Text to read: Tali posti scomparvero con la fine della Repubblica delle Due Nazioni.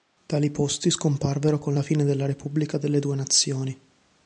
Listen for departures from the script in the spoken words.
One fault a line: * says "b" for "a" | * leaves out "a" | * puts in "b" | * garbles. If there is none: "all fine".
all fine